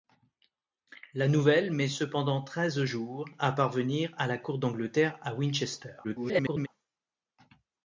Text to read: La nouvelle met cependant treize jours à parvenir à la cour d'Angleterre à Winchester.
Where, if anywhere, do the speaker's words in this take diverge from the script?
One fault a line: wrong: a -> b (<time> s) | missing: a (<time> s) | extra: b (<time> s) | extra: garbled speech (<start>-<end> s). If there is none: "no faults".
extra: garbled speech (6.0-6.7 s)